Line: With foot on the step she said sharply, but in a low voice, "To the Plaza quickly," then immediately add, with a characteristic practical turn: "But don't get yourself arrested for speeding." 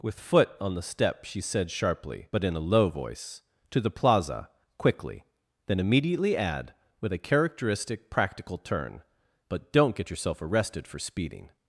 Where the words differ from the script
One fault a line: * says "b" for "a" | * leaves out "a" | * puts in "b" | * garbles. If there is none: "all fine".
all fine